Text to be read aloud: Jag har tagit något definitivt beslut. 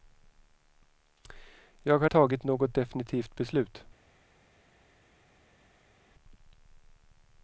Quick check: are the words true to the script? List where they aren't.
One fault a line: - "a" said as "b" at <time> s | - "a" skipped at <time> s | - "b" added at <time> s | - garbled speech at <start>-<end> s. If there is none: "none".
none